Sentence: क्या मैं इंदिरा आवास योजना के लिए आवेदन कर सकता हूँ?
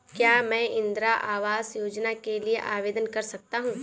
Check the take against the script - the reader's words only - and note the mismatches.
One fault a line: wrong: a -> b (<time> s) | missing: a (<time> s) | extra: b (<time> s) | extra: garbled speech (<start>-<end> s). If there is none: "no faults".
no faults